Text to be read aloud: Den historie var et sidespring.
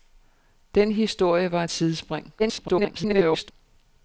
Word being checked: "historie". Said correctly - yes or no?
yes